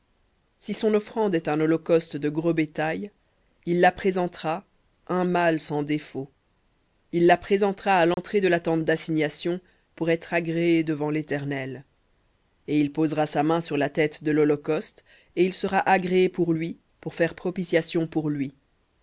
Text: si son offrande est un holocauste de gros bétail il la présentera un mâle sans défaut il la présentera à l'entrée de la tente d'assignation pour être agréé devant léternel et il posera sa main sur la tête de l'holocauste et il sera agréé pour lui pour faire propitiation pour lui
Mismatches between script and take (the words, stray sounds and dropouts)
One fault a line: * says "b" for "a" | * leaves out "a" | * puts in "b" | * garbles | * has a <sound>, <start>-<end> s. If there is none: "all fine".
* has a dropout, 8.1-8.2 s